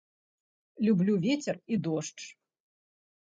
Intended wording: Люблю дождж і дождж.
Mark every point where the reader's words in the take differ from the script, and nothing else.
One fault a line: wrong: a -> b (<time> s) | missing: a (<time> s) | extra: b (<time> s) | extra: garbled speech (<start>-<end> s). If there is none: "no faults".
wrong: дождж -> вецер (1.2 s)